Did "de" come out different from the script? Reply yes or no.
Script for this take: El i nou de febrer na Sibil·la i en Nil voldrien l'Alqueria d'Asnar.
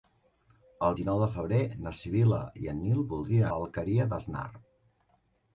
no